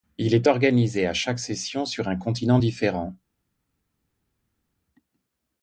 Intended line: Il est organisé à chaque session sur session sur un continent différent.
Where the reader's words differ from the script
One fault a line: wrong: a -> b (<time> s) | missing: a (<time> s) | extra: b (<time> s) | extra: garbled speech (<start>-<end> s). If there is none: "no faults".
missing: session sur (2.1 s)